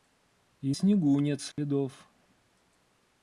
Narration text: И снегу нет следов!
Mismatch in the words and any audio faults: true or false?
true